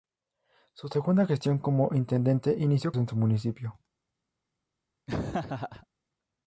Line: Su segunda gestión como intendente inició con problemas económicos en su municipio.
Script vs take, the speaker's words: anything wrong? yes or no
yes